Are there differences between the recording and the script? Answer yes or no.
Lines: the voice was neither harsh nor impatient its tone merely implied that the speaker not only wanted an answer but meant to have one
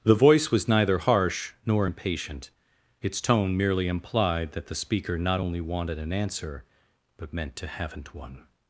yes